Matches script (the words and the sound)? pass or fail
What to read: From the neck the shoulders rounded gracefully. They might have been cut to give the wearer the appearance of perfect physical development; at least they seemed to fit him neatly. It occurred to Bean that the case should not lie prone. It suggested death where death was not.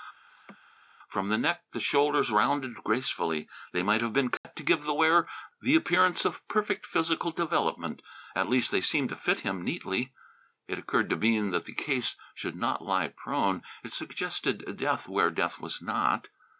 fail